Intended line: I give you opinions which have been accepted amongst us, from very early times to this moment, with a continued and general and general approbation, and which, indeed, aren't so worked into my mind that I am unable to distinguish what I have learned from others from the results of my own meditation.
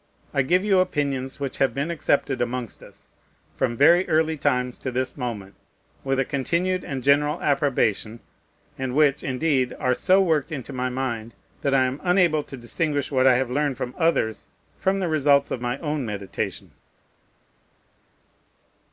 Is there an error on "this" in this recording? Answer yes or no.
no